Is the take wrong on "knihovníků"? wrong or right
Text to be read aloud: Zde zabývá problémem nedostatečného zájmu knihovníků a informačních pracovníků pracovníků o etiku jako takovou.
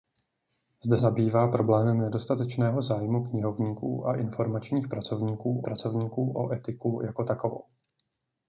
right